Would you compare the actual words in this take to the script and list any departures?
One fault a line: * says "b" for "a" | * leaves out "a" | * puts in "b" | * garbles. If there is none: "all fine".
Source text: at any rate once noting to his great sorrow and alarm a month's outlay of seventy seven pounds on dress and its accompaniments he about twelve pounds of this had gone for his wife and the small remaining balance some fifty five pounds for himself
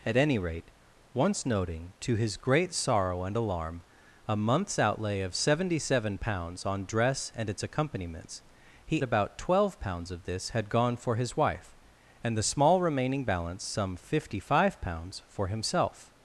all fine